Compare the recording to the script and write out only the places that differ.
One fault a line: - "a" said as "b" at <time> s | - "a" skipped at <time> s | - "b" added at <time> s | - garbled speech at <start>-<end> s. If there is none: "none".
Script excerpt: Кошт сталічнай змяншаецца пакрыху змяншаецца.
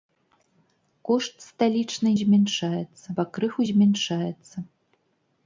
none